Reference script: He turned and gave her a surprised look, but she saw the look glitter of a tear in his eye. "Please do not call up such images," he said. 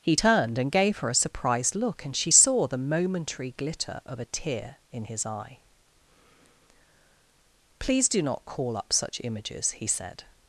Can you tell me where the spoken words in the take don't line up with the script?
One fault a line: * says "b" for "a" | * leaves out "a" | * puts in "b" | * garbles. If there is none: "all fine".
* says "and" for "but"
* says "momentary" for "look"